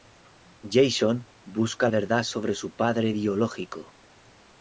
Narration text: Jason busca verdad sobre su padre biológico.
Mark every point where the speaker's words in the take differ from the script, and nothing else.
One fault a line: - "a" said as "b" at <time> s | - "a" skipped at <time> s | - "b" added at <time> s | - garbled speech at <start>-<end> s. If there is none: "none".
none